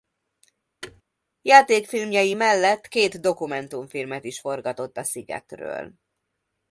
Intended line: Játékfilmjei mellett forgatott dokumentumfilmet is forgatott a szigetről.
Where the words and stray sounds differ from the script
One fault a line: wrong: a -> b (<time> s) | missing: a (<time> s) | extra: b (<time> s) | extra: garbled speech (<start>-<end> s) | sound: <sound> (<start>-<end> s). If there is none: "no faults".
sound: thud (0.8-1.0 s)
wrong: forgatott -> két (2.9 s)